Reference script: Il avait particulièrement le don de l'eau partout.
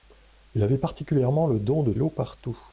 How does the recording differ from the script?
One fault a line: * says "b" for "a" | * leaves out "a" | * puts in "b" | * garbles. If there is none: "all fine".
all fine